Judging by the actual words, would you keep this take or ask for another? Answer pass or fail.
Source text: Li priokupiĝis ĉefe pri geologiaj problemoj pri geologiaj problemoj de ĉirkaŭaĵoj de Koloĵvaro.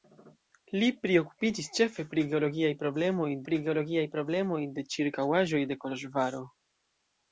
pass